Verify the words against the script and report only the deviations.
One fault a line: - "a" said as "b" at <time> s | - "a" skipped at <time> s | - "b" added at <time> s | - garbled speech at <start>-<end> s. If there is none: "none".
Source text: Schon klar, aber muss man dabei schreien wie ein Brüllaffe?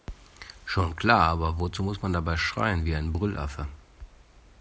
- "wozu" added at 1.6 s